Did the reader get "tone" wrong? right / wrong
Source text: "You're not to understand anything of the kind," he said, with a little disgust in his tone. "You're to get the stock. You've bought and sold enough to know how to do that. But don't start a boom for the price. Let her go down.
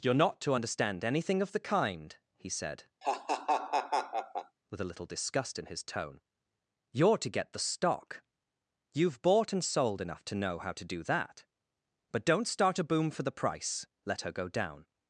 right